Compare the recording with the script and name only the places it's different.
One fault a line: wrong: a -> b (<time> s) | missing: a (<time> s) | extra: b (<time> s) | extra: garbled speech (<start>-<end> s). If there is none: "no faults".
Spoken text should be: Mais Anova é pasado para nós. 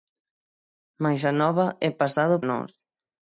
missing: para (2.4 s)